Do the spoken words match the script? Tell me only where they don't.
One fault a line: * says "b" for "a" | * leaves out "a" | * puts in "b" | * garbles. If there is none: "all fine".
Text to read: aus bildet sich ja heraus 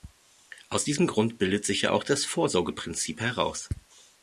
* puts in "diesem grund"
* puts in "auch das vorsorgeprinzip"